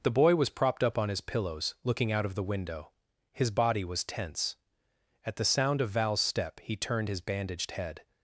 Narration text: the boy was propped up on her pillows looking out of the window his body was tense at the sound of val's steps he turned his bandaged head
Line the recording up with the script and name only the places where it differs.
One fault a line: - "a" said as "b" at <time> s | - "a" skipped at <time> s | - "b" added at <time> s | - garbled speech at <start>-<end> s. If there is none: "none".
- "her" said as "his" at 1.1 s
- "steps" said as "step" at 6.2 s